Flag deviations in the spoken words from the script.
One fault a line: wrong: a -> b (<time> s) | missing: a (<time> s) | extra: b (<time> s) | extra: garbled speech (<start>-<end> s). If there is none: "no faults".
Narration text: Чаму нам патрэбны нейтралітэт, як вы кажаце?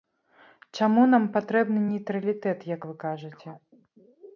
no faults